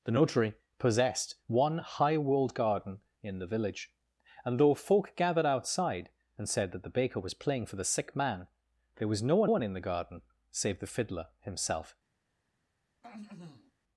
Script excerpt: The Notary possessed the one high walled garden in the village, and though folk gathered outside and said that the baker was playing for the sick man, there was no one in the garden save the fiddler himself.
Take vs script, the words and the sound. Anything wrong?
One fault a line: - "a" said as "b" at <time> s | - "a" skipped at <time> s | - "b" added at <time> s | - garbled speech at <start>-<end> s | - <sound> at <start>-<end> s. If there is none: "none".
- "the" skipped at 1.4 s
- "one" added at 9.5 s
- throat clearing at 13.0-13.7 s